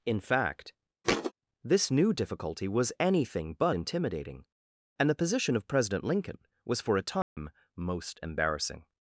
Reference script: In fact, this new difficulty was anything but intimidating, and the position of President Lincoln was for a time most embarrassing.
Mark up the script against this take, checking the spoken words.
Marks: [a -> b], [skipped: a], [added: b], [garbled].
In fact, this new difficulty was anything but intimidating, and the position of President Lincoln was for a time most embarrassing.